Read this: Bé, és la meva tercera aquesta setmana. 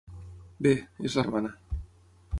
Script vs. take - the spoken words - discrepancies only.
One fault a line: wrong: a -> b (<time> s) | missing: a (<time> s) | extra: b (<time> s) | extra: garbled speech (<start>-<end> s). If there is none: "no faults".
missing: meva tercera aquesta (1.2 s)